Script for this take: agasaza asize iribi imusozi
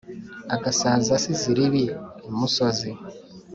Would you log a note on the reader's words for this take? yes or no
no